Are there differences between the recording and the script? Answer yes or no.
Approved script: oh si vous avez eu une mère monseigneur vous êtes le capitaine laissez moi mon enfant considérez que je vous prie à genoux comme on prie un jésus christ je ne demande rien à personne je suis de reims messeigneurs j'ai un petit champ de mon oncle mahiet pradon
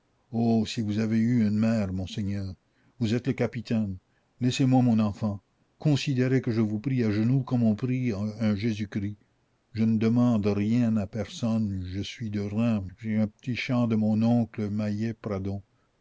yes